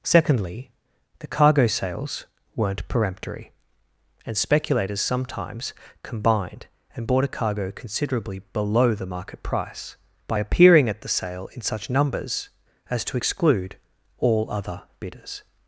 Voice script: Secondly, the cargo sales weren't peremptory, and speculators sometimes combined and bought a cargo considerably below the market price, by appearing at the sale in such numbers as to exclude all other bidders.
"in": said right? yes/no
yes